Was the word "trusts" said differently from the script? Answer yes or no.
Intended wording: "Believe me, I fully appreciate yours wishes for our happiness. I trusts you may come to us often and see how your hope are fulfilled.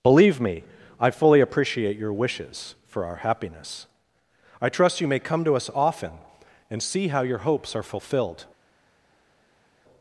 yes